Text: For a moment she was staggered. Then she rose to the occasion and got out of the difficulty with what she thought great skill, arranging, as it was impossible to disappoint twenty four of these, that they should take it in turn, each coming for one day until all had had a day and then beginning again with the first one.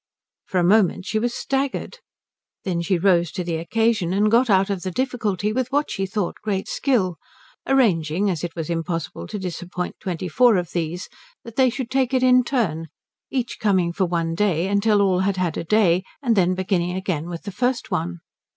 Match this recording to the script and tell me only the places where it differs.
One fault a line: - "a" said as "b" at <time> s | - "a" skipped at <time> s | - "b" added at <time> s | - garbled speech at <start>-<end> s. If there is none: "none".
none